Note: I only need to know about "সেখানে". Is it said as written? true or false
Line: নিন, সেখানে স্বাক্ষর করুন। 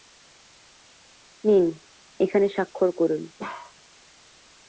false